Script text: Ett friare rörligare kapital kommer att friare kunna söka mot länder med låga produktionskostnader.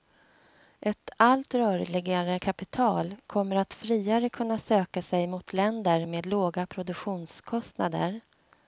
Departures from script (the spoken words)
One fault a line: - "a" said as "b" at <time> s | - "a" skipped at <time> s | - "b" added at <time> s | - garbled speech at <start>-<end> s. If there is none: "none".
- "friare" said as "allt" at 1.2 s
- "sig" added at 5.0 s